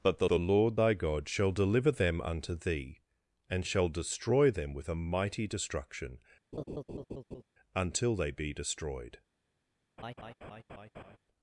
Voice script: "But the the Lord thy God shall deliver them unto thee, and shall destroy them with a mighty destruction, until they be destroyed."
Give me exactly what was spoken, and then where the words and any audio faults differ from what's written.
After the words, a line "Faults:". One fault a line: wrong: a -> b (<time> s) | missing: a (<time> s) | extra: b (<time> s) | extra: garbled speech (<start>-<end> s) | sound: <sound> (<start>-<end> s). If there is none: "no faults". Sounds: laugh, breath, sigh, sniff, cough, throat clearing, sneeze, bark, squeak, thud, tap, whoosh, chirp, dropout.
"But the the Lord thy God shall deliver them unto thee, and shall destroy them with a mighty destruction, until they be destroyed."
Faults:
sound: laugh (6.5-7.4 s)
sound: laugh (10.0-11.2 s)